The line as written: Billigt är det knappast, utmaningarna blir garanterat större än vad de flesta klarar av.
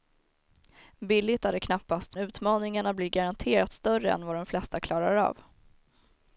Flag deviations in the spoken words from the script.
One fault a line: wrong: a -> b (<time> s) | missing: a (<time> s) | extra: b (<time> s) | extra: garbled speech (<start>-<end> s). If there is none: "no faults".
no faults